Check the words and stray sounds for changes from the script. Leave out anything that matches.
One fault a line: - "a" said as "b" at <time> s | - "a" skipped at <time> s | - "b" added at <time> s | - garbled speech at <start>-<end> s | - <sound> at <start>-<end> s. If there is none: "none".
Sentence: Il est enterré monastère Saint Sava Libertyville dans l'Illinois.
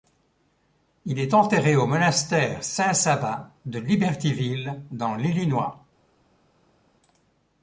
- "au" added at 1.8 s
- "de" added at 3.7 s